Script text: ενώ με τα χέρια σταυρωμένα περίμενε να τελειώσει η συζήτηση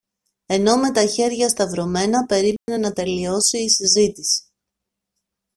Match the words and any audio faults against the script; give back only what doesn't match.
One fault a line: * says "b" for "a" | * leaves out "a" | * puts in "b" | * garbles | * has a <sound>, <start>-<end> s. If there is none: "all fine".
* has a dropout, 2.6-2.7 s